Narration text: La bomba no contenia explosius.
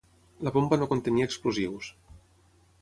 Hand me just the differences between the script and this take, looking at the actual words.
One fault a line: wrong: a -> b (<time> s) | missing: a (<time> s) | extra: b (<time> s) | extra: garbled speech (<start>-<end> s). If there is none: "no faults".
no faults